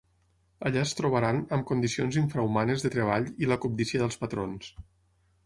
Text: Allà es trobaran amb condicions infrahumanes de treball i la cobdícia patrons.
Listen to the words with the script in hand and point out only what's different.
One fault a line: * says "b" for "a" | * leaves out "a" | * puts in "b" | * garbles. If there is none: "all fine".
* puts in "dels"